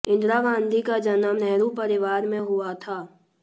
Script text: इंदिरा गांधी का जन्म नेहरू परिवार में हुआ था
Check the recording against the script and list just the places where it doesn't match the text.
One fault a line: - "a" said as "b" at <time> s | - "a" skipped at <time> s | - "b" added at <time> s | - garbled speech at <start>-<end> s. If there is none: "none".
none